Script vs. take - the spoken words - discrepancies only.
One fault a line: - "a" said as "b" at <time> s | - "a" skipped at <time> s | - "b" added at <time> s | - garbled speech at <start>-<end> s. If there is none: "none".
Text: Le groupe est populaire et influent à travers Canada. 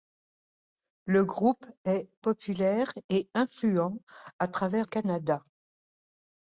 none